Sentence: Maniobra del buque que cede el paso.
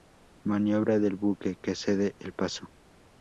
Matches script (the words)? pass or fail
pass